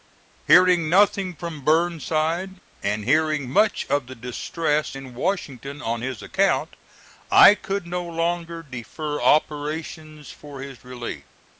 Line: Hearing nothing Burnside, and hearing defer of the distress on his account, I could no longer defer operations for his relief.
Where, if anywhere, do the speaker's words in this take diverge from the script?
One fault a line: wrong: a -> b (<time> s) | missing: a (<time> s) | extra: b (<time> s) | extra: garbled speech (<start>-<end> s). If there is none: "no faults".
extra: from (1.4 s)
wrong: defer -> much (3.5 s)
extra: in Washington (4.9 s)